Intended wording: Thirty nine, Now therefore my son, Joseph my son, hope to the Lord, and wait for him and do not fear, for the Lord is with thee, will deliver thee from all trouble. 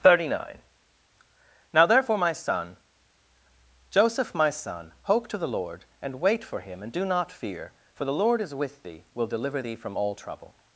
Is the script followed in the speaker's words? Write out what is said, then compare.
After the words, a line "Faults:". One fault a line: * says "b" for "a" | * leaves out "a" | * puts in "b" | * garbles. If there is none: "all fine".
Thirty nine, Now therefore my son, Joseph my son, hope to the Lord, and wait for him and do not fear, for the Lord is with thee, will deliver thee from all trouble.
Faults:
all fine